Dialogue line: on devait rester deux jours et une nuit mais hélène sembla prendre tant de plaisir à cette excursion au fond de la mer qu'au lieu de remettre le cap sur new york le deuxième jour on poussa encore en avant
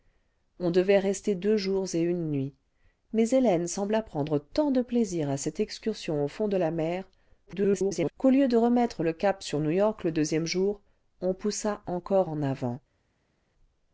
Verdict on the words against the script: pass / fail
fail